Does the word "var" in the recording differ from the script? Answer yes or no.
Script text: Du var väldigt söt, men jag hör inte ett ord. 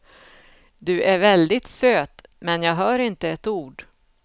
yes